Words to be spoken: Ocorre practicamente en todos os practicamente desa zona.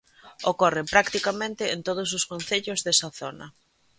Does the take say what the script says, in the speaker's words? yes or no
no